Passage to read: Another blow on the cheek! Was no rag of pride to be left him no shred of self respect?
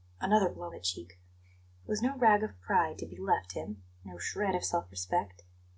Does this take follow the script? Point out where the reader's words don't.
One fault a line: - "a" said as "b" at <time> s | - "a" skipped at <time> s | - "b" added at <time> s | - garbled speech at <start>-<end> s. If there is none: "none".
- "on" skipped at 0.7 s